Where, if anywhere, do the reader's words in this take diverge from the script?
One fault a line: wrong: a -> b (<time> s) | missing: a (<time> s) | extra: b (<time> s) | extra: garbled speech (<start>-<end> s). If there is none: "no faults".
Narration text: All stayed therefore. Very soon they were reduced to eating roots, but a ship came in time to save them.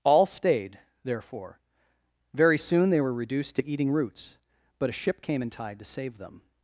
wrong: time -> tide (5.5 s)